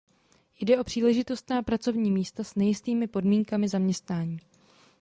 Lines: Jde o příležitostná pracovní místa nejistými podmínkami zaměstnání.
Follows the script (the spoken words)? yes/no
no